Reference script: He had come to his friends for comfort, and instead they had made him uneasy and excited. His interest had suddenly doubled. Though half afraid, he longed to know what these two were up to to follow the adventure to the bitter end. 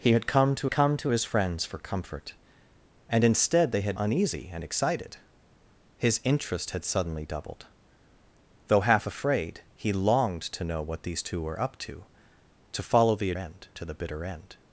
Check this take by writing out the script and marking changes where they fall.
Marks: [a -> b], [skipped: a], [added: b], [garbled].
He had come to [added: come to] his friends for comfort, and instead they had [skipped: made him] uneasy and excited. His interest had suddenly doubled. Though half afraid, he longed to know what these two were up to to follow the [adventure -> end] to the bitter end.